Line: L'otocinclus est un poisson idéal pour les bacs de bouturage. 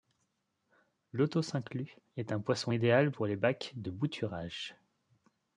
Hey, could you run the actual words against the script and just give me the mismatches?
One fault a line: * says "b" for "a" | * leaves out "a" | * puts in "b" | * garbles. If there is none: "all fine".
all fine